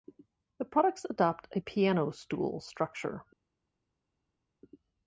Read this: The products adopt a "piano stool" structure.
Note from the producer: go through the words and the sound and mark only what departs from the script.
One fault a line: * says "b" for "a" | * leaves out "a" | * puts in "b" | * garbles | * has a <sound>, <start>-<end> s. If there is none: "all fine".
all fine